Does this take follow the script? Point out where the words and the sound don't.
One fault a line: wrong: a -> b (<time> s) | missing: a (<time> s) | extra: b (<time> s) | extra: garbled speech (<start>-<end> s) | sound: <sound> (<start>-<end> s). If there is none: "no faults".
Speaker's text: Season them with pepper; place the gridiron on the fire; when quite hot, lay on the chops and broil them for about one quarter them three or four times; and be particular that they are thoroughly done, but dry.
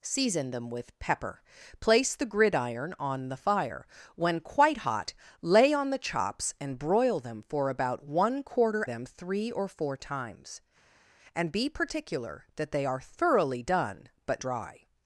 no faults